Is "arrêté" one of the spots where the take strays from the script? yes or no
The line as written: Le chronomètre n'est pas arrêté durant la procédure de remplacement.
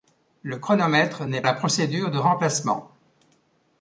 yes